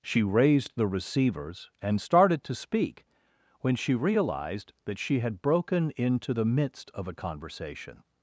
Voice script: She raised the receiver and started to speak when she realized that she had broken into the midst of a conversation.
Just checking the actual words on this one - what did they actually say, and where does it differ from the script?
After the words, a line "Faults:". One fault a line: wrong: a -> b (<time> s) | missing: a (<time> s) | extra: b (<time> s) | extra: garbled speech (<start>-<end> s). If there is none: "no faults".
She raised the receivers and started to speak when she realized that she had broken into the midst of a conversation.
Faults:
wrong: receiver -> receivers (0.9 s)